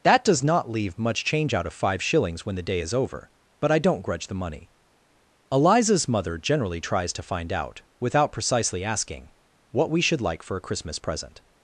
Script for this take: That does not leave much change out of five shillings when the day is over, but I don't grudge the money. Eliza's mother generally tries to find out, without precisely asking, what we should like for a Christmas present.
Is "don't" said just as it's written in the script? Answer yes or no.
yes